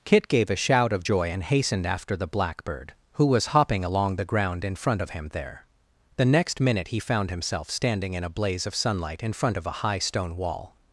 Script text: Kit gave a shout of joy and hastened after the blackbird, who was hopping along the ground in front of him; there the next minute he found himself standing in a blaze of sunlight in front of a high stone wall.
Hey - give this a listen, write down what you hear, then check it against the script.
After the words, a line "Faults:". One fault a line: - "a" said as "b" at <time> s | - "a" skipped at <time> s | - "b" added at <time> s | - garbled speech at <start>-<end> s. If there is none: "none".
Kit gave a shout of joy and hastened after the blackbird, who was hopping along the ground in front of him; there the next minute he found himself standing in a blaze of sunlight in front of a high stone wall.
Faults:
none